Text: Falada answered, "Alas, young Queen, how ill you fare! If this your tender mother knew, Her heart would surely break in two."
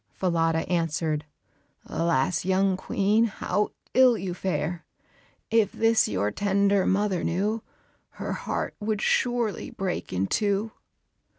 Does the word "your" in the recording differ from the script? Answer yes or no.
no